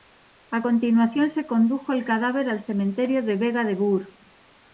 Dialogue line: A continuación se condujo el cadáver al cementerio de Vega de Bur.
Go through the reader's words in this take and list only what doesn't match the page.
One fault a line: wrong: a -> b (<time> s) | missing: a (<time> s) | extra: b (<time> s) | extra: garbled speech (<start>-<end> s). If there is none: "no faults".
no faults